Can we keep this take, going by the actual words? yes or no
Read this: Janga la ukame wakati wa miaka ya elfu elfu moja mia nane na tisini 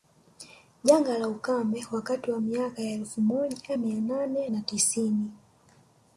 no